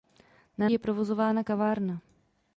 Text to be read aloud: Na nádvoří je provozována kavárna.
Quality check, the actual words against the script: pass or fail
fail